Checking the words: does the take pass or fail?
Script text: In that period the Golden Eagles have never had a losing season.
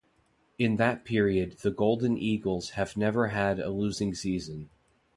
pass